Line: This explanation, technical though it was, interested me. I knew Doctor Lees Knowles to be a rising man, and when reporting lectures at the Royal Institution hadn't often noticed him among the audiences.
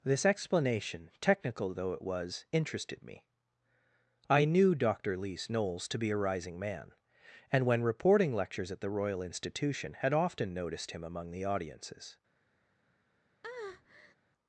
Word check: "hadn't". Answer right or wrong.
wrong